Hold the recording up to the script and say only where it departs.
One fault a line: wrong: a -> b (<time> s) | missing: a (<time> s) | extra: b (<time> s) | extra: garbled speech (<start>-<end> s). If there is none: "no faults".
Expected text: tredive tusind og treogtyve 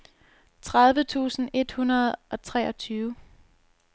extra: et hundrede (1.5 s)